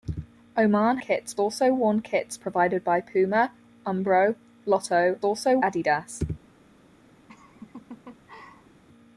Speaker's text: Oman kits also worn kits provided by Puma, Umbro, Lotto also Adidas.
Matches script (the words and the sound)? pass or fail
fail